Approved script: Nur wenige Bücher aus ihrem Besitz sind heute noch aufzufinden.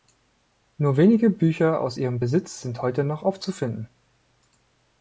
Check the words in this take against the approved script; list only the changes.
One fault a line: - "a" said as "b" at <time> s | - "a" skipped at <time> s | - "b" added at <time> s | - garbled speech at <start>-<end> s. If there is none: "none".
none